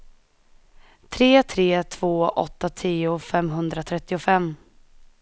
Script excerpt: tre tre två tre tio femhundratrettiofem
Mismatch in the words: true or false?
true